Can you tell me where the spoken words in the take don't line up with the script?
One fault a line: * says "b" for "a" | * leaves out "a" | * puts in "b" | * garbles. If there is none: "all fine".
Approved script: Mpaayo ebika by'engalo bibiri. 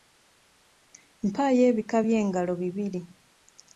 all fine